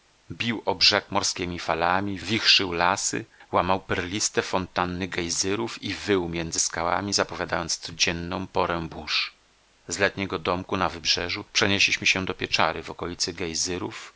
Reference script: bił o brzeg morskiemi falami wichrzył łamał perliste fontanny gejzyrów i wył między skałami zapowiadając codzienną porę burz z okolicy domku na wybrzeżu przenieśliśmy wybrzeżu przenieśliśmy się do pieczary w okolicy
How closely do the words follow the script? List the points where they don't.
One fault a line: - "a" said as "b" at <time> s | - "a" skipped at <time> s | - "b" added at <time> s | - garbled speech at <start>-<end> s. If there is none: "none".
- "lasy" added at 2.7 s
- "okolicy" said as "letniego" at 10.0 s
- "wybrzeżu przenieśliśmy" skipped at 12.1 s